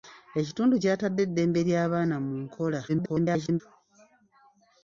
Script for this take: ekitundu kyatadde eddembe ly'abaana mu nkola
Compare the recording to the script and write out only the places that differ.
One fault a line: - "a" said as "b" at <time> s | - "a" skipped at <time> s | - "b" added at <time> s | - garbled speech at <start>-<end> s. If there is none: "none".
- garbled speech at 2.9-3.6 s